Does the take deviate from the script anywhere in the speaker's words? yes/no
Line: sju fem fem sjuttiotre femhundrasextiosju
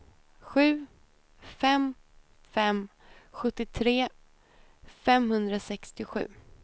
no